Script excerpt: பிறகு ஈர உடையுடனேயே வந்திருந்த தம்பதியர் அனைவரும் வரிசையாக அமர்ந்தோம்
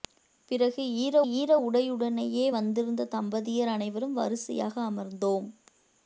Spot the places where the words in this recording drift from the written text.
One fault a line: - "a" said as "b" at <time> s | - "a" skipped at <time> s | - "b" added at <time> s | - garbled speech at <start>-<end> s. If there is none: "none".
- "ஈர" added at 1.3 s